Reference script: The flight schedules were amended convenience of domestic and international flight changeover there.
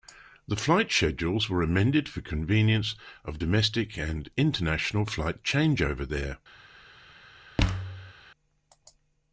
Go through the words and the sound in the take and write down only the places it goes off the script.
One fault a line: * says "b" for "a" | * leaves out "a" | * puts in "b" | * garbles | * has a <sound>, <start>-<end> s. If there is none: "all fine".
* puts in "for"
* has a thud, 7.6-8.1 s